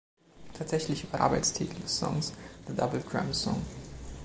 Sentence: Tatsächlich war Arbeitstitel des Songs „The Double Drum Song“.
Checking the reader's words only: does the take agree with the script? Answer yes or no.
yes